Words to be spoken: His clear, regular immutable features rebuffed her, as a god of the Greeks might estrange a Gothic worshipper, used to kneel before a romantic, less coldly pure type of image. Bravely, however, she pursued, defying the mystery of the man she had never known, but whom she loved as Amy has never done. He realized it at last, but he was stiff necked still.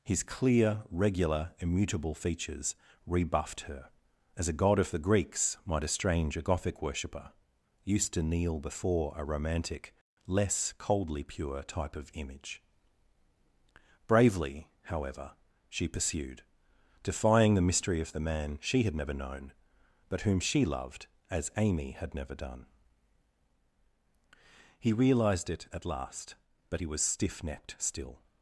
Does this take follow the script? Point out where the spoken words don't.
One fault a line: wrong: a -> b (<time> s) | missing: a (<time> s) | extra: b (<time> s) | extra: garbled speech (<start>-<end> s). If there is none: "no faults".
wrong: has -> had (21.9 s)